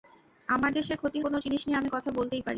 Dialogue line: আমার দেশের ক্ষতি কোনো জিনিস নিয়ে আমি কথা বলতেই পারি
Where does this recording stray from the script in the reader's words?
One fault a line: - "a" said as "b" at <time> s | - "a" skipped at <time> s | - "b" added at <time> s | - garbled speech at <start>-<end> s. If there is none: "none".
none